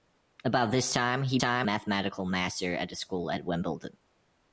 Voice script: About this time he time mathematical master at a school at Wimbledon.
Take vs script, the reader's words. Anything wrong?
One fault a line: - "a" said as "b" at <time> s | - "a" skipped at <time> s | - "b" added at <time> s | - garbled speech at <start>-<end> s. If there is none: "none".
none